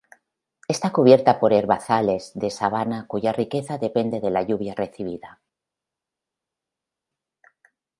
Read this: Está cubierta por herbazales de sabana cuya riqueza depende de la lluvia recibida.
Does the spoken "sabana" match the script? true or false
true